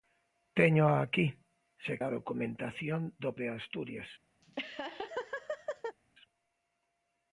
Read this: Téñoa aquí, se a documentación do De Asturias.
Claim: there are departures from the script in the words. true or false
false